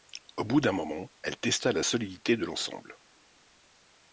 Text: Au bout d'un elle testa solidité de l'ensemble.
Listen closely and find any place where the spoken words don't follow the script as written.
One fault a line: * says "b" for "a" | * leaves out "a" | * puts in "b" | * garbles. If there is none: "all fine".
* puts in "moment"
* puts in "la"